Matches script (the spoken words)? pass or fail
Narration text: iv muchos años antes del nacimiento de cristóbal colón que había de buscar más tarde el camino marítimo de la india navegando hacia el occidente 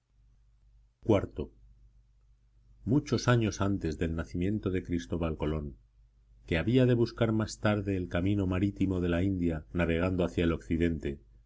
pass